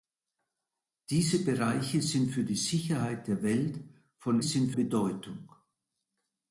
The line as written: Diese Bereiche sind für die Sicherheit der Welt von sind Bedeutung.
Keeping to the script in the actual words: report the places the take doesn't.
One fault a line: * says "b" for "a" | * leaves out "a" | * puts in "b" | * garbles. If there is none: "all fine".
all fine